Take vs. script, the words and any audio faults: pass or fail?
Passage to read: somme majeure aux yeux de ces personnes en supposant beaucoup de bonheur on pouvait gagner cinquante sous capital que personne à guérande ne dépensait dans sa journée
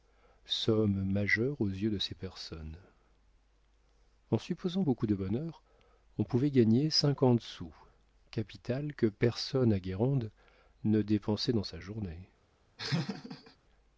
fail